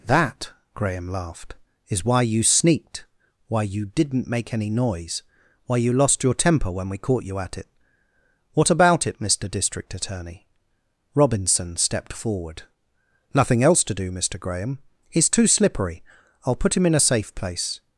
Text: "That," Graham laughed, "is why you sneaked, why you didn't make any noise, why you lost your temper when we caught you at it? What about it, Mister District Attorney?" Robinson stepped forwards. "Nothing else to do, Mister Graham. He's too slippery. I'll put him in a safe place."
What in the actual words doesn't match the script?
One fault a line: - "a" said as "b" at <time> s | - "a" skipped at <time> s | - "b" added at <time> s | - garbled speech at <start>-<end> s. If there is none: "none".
- "forwards" said as "forward" at 12.1 s